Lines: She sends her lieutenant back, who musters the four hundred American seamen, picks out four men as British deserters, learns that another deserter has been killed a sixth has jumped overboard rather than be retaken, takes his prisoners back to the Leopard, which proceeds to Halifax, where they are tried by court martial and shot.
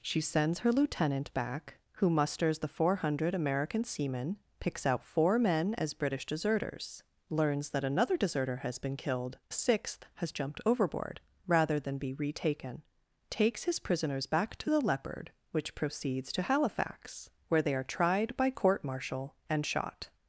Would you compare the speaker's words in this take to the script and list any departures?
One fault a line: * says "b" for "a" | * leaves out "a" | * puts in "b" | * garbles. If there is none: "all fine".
all fine